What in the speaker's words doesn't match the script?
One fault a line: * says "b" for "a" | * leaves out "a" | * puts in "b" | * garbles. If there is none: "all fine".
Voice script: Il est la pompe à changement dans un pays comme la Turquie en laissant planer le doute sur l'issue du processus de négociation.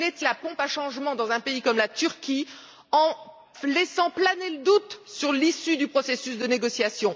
all fine